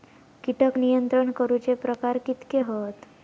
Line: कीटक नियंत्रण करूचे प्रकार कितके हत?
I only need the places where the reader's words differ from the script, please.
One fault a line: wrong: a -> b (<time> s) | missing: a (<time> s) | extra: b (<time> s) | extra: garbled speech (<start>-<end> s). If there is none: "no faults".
no faults